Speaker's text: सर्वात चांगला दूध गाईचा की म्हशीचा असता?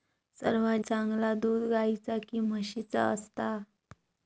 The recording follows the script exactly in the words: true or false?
true